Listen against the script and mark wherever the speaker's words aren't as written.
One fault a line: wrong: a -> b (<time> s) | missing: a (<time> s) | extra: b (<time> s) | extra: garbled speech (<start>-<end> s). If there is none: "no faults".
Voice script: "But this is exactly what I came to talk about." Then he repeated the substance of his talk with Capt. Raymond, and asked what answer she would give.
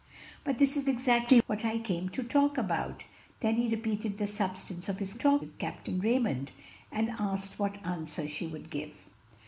no faults